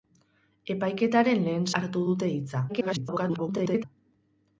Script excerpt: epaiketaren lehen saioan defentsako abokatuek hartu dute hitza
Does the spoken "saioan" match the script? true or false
false